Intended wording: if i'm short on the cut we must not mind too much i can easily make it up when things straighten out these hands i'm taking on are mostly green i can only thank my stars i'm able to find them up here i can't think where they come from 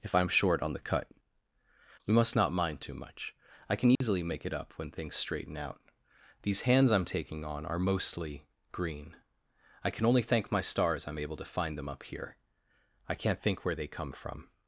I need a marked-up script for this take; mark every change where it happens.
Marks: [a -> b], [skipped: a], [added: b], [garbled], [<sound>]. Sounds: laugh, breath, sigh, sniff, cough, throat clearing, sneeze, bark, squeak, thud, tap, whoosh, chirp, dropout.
if i'm short on the cut we must not mind too much i can easily [dropout] make it up when things straighten out these hands i'm taking on are mostly green i can only thank my stars i'm able to find them up here i can't think where they come from